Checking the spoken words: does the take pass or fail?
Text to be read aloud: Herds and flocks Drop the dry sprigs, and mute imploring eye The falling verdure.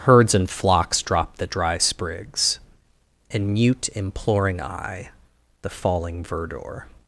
pass